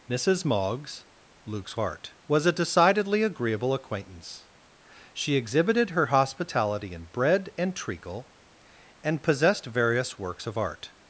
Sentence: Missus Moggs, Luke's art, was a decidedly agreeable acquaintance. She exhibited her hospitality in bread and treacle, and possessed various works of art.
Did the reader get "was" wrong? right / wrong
right